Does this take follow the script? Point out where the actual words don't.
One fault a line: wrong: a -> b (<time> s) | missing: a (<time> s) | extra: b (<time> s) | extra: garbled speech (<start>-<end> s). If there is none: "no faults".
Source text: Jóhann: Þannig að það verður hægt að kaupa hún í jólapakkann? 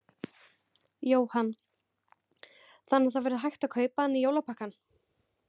wrong: hún -> hann (4.1 s)